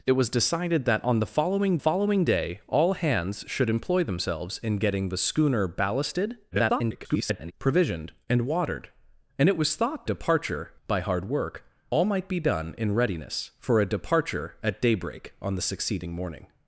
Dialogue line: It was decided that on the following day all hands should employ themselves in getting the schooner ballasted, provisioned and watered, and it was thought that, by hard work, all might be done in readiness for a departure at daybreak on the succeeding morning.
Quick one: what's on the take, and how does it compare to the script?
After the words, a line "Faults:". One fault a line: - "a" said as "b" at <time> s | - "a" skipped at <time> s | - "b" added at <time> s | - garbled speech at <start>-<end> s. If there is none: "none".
It was decided that on the following following day all hands should employ themselves in getting the schooner ballasted, [garbled] provisioned and watered, and it was thought departure, by hard work, all might be done in readiness for a departure at daybreak on the succeeding morning.
Faults:
- "following" added at 1.8 s
- garbled speech at 6.5-7.5 s
- "that" said as "departure" at 10.0 s